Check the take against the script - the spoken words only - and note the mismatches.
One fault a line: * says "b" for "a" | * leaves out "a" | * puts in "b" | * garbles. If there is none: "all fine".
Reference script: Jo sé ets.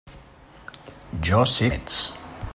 all fine